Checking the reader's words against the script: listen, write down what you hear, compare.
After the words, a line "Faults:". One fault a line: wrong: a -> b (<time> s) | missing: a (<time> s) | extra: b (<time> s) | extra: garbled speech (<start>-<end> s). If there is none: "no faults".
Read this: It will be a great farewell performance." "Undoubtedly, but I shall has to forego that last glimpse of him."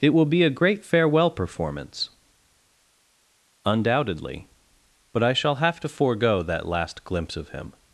It will be a great farewell performance." "Undoubtedly, but I shall have to forego that last glimpse of him."
Faults:
wrong: has -> have (5.6 s)